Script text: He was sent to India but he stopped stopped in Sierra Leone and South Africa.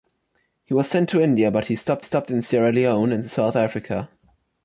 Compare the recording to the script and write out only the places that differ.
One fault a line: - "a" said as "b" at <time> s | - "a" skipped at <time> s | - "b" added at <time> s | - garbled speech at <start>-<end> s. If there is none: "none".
none